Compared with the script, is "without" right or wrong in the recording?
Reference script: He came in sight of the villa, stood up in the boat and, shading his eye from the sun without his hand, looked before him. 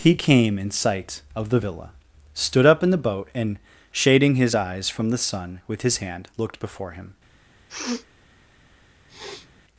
wrong